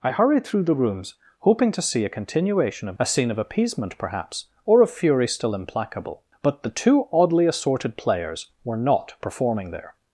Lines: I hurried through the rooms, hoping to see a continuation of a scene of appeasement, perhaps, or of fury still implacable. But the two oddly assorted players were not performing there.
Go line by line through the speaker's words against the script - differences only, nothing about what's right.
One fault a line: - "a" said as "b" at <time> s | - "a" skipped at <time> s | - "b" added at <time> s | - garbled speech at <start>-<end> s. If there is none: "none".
none